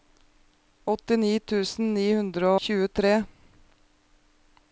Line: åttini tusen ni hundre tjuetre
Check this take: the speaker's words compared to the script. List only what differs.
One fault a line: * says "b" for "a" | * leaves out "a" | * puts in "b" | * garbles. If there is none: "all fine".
all fine